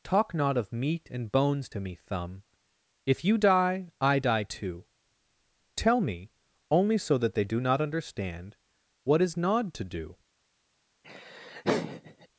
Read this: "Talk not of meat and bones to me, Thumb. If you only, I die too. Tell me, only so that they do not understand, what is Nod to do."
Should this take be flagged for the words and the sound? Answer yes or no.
yes